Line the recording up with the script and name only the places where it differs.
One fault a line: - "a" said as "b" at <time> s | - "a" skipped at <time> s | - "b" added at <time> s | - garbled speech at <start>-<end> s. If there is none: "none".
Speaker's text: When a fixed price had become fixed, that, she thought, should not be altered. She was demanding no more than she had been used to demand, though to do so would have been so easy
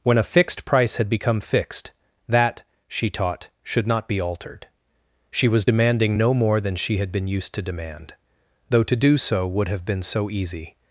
- "thought" said as "taught" at 3.1 s